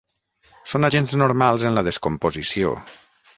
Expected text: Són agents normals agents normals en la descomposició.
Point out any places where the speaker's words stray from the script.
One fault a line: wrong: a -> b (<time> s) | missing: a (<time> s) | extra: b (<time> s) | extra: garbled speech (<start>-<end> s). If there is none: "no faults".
missing: agents normals (1.6 s)